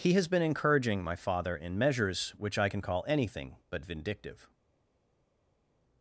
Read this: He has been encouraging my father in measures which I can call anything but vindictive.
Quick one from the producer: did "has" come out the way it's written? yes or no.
yes